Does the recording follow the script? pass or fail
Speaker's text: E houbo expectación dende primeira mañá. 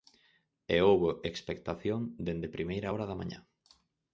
fail